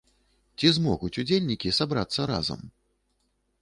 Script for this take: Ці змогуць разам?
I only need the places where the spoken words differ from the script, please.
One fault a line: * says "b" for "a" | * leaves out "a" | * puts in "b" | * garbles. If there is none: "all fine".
* puts in "удзельнікі сабрацца"